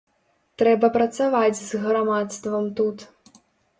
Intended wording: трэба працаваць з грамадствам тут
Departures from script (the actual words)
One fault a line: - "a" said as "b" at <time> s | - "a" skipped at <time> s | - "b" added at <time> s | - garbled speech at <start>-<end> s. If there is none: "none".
none